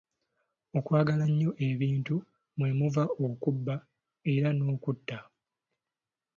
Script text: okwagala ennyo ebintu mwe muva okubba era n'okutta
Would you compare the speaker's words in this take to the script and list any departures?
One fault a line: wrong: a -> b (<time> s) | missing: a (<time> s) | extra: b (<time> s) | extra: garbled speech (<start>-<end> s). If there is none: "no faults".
no faults